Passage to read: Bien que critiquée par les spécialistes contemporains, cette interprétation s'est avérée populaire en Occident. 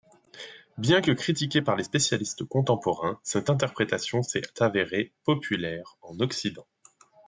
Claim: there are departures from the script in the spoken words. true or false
false